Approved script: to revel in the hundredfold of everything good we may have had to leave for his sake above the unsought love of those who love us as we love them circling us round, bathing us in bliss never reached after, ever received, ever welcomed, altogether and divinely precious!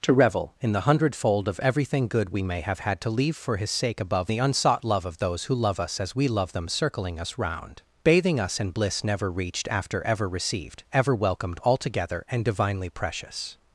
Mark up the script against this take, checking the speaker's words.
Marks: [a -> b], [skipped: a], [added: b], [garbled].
to revel in the hundredfold of everything good we may have had to leave for his sake above the unsought love of those who love us as we love them circling us round, bathing us in bliss never reached after, ever received, ever welcomed, altogether and divinely precious!